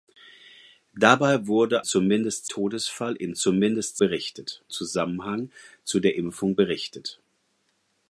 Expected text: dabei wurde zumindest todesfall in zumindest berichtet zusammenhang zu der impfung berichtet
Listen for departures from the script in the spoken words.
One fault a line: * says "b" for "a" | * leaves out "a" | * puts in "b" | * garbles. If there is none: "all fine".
all fine